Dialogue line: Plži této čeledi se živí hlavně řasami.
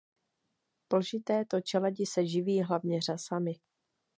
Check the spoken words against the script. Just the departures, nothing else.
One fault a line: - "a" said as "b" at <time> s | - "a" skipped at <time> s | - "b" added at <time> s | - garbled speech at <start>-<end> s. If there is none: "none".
none